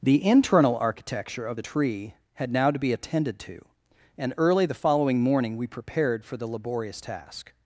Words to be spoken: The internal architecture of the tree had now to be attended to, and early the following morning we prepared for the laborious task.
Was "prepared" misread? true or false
false